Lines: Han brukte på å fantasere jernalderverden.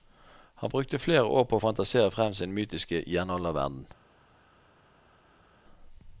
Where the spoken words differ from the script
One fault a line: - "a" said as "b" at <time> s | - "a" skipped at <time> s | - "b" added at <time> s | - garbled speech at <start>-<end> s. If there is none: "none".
- "flere år" added at 1.0 s
- "frem sin mytiske" added at 2.1 s